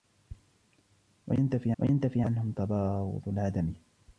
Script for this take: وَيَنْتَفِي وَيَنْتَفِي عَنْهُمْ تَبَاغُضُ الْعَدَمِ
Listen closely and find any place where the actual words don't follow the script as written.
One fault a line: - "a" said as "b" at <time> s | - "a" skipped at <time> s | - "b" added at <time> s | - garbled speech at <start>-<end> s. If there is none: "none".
none